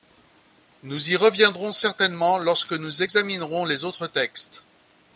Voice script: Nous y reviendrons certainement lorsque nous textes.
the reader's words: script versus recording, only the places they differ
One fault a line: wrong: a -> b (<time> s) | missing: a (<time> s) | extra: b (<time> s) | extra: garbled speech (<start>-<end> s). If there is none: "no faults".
extra: examinerons les autres (3.0 s)